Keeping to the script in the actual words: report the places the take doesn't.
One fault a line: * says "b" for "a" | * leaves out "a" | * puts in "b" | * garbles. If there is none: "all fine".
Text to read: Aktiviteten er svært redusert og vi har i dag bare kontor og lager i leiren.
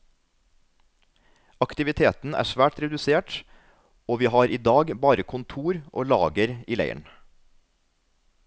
all fine